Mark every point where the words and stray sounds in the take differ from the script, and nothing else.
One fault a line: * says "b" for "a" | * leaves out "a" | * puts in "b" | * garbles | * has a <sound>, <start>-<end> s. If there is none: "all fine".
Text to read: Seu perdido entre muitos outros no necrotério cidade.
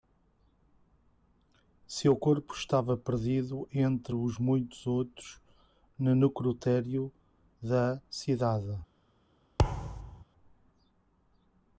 * puts in "corpo estava"
* puts in "os"
* puts in "da"
* has a thud, 9.6-10.2 s